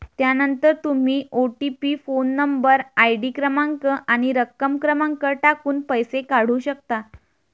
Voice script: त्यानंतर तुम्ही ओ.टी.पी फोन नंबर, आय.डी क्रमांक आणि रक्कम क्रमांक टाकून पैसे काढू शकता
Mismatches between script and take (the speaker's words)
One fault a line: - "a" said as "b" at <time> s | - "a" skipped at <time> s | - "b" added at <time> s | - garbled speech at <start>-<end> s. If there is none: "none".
none